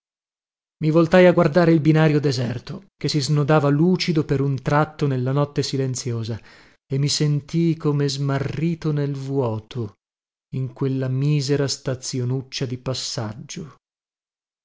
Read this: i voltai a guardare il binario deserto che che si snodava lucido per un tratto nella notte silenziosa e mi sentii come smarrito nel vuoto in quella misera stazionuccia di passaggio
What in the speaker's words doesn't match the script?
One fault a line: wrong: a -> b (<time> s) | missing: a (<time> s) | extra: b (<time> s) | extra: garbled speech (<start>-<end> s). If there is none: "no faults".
missing: che (3.1 s)